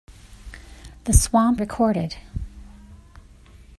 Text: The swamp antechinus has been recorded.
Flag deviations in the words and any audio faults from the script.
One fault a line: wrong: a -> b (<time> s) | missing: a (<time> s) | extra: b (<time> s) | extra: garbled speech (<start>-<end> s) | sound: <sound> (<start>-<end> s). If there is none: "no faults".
missing: antechinus has been (1.6 s)